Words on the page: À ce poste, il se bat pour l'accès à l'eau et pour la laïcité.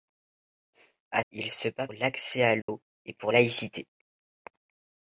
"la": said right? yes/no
no